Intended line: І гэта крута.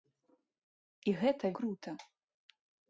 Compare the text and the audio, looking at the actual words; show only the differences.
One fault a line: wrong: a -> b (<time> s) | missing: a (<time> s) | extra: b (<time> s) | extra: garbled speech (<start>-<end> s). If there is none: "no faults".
no faults